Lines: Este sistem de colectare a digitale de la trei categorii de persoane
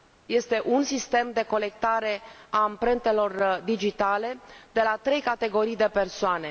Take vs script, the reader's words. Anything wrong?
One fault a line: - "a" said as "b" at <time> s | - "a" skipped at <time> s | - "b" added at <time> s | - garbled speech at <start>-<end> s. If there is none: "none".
- "un" added at 0.7 s
- "amprentelor" added at 2.6 s